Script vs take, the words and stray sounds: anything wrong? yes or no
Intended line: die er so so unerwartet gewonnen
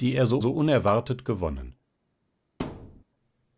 yes